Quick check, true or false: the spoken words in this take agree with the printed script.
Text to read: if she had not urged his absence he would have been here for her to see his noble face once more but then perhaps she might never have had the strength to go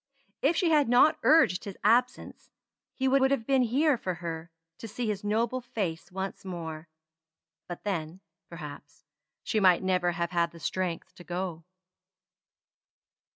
false